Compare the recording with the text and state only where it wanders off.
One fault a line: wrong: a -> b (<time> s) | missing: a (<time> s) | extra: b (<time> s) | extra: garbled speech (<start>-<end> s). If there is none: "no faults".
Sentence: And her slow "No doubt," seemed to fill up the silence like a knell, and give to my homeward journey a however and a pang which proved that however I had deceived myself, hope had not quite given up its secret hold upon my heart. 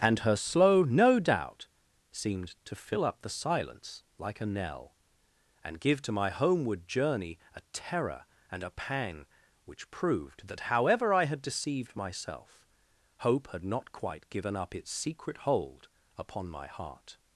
wrong: however -> terror (7.7 s)